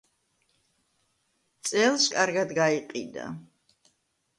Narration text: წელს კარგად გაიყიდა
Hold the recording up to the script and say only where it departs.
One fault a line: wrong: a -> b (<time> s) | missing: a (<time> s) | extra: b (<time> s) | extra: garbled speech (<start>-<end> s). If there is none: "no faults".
no faults